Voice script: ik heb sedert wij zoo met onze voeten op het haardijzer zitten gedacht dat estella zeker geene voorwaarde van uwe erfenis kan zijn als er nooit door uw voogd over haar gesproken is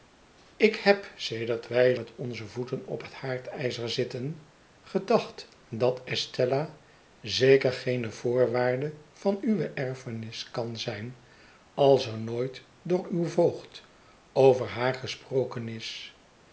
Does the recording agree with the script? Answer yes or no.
no